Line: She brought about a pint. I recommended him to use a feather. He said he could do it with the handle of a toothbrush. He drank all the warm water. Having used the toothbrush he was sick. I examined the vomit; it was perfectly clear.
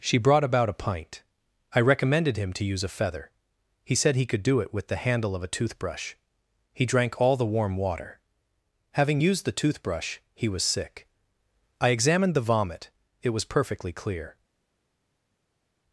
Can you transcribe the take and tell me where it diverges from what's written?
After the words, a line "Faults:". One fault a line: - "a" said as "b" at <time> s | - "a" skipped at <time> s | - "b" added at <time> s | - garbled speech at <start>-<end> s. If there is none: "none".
She brought about a pint. I recommended him to use a feather. He said he could do it with the handle of a toothbrush. He drank all the warm water. Having used the toothbrush he was sick. I examined the vomit; it was perfectly clear.
Faults:
none